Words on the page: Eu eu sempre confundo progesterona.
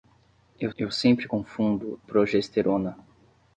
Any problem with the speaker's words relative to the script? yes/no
no